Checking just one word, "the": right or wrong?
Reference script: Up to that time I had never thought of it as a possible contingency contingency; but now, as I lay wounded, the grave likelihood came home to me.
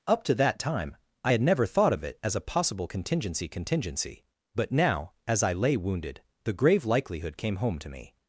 right